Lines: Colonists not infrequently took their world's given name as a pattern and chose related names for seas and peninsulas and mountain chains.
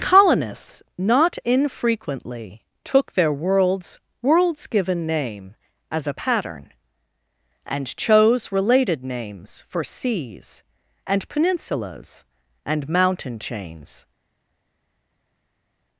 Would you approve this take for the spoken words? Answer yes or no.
no